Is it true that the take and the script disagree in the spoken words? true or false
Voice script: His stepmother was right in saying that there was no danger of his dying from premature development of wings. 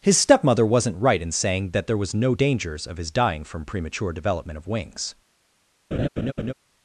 true